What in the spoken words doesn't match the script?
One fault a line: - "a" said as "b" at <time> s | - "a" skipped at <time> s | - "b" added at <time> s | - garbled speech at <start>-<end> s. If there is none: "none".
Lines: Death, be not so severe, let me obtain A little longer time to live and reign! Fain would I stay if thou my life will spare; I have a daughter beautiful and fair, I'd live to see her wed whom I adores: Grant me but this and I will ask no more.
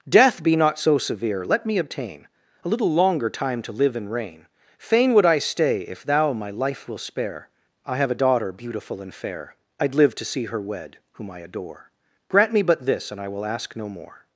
- "adores" said as "adore" at 11.4 s